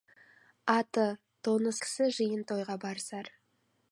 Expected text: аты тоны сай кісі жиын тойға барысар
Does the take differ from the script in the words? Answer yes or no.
yes